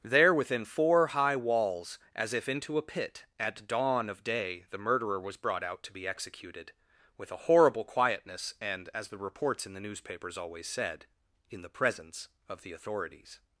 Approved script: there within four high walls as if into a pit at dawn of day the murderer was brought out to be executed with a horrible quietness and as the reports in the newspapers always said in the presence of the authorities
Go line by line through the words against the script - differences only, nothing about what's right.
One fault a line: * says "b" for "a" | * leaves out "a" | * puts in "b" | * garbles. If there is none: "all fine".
all fine